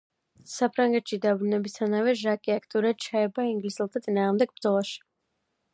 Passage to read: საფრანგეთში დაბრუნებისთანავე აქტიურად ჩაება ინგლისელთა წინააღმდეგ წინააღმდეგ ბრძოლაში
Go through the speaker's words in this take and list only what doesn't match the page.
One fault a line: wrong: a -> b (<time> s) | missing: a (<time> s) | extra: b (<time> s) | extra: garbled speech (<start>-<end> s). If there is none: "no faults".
extra: ჟაკი (2.2 s)
missing: წინააღმდეგ (4.6 s)